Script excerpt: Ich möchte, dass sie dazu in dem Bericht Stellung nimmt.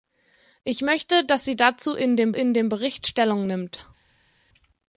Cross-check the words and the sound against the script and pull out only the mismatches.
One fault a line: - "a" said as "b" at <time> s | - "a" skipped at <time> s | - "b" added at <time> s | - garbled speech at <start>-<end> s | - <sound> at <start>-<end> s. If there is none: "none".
- "in dem" added at 2.3 s